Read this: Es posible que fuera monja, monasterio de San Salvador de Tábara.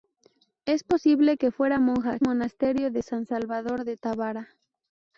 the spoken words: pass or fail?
pass